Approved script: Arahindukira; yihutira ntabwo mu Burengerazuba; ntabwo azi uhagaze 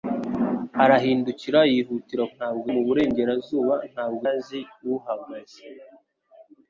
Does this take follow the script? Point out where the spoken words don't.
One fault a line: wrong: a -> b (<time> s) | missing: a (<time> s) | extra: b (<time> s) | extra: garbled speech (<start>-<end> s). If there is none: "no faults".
no faults